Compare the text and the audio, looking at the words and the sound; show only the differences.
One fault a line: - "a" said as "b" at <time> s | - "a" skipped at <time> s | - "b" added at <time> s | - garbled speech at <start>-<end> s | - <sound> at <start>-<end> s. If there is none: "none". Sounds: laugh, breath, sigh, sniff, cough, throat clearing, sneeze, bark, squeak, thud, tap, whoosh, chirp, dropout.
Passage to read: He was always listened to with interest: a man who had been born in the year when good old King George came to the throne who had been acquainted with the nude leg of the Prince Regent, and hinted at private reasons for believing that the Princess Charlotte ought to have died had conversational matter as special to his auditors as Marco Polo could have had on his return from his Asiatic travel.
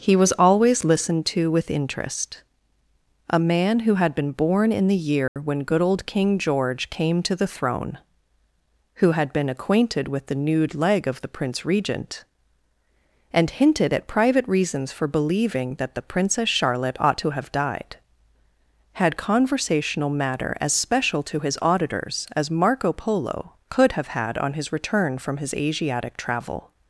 - dropout at 5.3-5.4 s